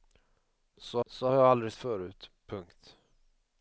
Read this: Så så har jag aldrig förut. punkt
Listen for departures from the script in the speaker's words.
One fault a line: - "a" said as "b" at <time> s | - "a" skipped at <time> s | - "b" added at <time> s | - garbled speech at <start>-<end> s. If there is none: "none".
none